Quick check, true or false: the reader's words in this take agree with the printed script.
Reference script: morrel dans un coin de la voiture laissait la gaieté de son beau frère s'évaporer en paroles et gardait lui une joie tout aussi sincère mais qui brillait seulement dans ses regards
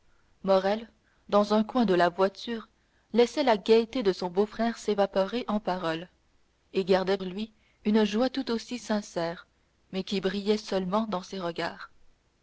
true